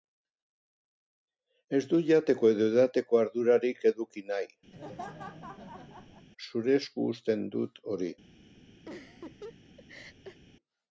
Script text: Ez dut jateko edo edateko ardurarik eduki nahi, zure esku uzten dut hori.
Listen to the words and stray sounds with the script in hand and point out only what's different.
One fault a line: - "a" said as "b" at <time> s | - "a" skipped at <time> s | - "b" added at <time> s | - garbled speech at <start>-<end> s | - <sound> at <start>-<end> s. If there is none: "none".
- laugh at 4.7-6.3 s
- laugh at 8.9-10.4 s